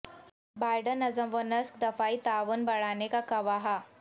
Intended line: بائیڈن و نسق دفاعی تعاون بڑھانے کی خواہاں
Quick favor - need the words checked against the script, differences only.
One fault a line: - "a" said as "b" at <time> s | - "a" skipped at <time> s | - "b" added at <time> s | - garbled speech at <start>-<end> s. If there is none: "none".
- "نظم" added at 1.0 s
- "کی" said as "کا" at 3.1 s